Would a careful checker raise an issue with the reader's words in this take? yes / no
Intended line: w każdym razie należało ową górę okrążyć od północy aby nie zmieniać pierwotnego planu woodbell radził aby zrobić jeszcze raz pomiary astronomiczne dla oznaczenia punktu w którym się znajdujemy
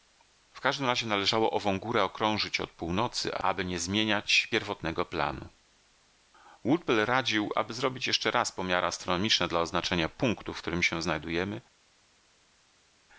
no